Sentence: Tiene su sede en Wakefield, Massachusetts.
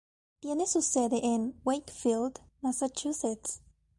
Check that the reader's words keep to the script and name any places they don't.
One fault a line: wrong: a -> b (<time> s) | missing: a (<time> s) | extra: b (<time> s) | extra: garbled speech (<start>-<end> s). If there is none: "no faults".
no faults